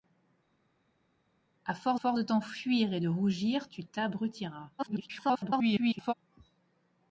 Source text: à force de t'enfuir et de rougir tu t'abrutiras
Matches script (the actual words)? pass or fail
fail